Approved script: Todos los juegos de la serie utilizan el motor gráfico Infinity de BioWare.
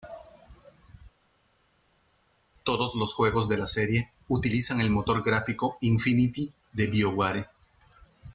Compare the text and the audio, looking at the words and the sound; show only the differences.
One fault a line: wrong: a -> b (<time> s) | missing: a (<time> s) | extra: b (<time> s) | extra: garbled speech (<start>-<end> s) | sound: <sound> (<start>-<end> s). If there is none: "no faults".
no faults